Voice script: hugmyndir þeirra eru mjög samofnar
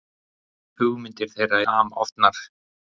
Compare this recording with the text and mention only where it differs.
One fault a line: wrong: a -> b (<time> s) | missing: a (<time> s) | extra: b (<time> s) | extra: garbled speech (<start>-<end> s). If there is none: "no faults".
missing: eru mjög (1.6 s)